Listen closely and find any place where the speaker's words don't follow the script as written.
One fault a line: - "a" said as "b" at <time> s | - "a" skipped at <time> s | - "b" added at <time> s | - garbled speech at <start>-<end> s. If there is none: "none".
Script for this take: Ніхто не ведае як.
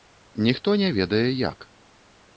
none